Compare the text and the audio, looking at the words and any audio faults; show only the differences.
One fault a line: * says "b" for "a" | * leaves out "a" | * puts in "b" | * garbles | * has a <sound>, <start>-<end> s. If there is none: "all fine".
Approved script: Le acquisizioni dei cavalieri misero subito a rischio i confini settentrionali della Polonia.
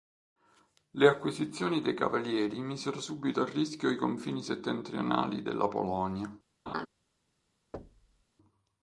* has a laugh, 6.7-6.9 s
* has a thud, 7.7-8.2 s